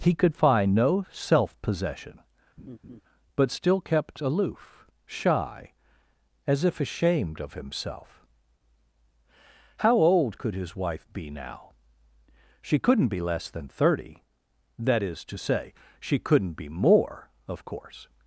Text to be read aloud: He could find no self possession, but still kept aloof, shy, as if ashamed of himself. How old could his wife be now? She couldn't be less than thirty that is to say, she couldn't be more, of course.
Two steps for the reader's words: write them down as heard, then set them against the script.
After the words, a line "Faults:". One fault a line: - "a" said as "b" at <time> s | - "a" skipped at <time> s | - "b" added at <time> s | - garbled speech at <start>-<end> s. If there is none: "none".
He could find no self possession, but still kept aloof, shy, as if ashamed of himself. How old could his wife be now? She couldn't be less than thirty that is to say, she couldn't be more, of course.
Faults:
none